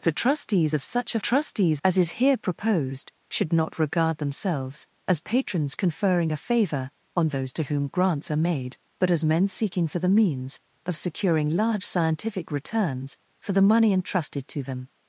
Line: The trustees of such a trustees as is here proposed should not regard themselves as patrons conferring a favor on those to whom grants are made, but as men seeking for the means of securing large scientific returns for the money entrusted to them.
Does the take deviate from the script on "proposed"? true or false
false